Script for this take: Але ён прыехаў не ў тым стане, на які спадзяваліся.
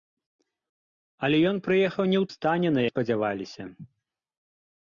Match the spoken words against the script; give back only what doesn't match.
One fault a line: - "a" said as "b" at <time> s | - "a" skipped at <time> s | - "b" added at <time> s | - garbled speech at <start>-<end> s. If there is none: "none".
- "тым" skipped at 2.2 s
- "які" skipped at 2.8 s